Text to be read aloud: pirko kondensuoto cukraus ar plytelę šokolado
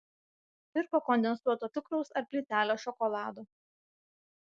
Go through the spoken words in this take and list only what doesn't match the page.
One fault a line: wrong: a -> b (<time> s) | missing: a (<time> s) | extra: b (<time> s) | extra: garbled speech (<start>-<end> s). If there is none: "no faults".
no faults